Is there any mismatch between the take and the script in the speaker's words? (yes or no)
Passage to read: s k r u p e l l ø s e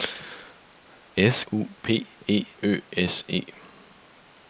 yes